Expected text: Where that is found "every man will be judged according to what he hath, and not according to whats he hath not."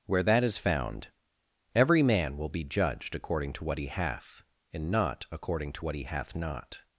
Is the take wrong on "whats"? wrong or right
wrong